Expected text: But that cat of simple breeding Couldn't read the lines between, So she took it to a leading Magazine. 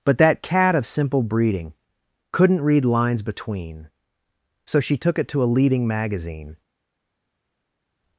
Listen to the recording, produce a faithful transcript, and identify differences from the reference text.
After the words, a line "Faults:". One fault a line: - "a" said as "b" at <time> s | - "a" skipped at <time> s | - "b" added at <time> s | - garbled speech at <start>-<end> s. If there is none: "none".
But that cat of simple breeding Couldn't read lines between, So she took it to a leading Magazine.
Faults:
- "the" skipped at 2.9 s